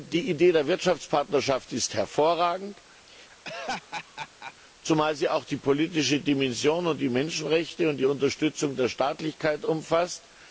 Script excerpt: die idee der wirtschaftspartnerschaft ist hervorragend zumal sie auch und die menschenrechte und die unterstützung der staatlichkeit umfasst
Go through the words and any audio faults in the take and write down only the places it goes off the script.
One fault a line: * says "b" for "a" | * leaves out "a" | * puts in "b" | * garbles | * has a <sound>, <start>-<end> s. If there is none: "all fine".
* has a laugh, 3.1-4.5 s
* puts in "die politische dimension"